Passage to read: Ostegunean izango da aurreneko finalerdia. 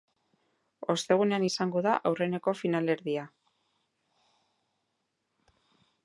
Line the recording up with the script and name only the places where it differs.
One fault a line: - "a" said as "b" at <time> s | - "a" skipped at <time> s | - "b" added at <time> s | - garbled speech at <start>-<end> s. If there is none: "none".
none